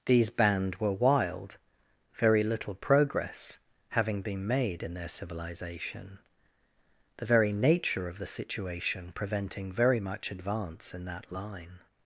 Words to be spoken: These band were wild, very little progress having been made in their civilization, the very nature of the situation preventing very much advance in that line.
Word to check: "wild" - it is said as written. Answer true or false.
true